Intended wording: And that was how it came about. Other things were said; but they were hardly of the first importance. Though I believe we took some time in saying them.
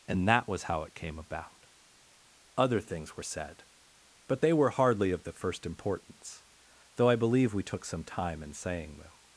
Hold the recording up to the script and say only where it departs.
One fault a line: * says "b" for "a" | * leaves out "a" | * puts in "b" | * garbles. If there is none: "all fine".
all fine